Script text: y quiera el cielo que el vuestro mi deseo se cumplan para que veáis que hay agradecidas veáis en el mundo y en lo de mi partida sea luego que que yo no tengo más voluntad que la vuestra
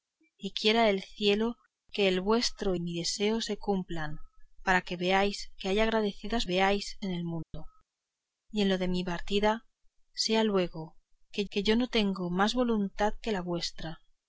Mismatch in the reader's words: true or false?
false